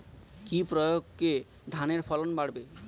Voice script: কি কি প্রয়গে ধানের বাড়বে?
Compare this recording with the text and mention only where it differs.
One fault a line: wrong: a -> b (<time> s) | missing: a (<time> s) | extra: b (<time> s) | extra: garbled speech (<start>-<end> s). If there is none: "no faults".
missing: কি (0.6 s)
extra: ফলন (2.0 s)